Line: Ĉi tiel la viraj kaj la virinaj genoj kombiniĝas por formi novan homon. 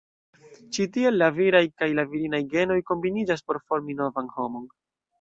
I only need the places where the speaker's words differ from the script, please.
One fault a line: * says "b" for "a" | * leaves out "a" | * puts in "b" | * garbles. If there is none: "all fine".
all fine